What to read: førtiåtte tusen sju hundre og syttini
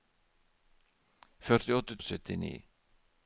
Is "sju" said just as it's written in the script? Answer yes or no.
no